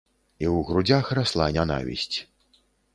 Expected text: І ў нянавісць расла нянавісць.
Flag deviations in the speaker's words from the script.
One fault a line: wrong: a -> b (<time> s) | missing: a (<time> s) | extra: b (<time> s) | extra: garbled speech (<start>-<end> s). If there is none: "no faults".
wrong: нянавісць -> грудзях (0.7 s)